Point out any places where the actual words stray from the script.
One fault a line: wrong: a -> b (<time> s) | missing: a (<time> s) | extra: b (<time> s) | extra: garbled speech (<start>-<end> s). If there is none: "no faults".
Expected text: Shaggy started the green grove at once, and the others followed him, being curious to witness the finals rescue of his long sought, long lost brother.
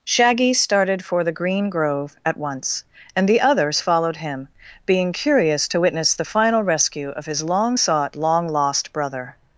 extra: for (1.1 s)
wrong: finals -> final (6.2 s)